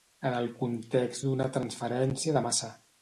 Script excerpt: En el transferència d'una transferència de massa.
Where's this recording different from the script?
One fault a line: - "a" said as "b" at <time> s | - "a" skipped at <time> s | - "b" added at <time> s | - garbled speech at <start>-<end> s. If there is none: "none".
- "transferència" said as "context" at 0.6 s